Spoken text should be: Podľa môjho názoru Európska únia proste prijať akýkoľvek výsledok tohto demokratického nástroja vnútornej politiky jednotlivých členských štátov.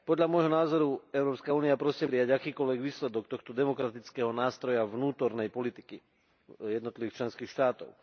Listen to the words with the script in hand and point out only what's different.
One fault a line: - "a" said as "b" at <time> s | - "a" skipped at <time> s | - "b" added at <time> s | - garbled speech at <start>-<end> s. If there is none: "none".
none